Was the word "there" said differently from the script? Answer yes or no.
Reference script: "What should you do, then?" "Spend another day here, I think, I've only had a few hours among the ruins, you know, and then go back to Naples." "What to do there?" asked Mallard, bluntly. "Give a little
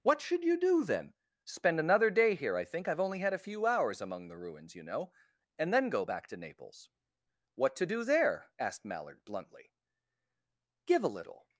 no